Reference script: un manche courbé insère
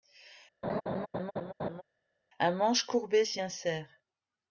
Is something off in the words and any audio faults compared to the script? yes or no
yes